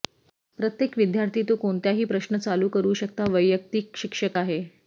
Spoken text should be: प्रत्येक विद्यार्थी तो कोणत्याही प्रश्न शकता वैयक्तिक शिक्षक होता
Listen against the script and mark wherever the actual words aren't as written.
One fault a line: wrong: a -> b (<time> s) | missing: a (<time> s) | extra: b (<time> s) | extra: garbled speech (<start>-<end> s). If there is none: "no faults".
extra: चालू करू (2.4 s)
wrong: होता -> आहे (4.4 s)